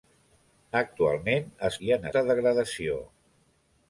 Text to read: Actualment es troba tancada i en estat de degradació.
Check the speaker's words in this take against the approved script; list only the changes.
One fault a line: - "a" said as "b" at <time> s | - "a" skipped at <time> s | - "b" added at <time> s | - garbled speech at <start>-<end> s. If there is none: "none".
- "troba tancada" skipped at 1.8 s
- "estat" skipped at 2.1 s